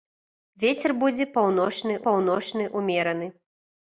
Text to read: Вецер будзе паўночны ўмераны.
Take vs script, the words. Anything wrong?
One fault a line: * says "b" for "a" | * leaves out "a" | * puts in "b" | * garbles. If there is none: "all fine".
* puts in "паўночны"